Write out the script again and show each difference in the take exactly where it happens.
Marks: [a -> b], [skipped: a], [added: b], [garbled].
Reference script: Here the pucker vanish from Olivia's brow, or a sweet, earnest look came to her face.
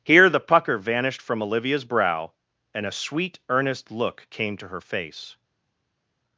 Here the pucker [vanish -> vanished] from Olivia's brow, [or -> and] a sweet, earnest look came to her face.